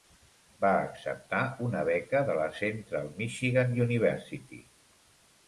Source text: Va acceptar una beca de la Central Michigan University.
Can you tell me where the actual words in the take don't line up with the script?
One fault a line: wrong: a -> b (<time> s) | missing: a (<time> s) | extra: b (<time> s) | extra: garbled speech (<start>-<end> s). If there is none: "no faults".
no faults